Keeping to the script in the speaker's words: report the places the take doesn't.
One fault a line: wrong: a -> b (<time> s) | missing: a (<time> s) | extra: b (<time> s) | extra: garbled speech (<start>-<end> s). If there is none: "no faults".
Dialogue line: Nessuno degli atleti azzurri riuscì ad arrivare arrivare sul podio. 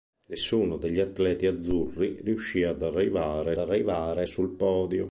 no faults